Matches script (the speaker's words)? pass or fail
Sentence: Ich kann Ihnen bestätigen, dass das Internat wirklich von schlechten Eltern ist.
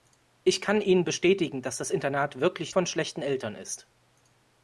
pass